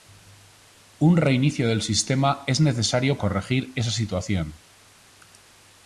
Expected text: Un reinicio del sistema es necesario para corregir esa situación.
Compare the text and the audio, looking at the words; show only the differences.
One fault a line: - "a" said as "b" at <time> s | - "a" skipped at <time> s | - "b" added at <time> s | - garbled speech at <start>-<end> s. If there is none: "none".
- "para" skipped at 3.2 s